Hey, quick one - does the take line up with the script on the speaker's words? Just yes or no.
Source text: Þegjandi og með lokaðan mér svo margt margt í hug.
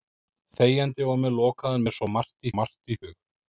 yes